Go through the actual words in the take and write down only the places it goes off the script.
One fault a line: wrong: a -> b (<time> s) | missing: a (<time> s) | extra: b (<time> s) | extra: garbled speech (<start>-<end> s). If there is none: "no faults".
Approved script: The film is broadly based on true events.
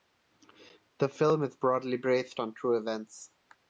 no faults